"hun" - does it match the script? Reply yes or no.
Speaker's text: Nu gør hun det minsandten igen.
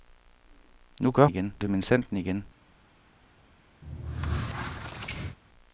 no